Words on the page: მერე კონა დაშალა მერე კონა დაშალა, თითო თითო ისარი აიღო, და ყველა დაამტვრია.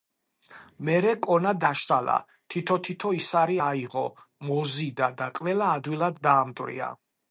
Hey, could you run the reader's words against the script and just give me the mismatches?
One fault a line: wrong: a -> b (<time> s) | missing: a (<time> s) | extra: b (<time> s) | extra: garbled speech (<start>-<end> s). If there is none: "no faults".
missing: მერე კონა დაშალა (2.1 s)
extra: მოზიდა (4.5 s)
extra: ადვილად (5.8 s)